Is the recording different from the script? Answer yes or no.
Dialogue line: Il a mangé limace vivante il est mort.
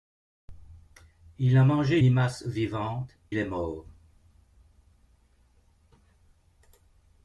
no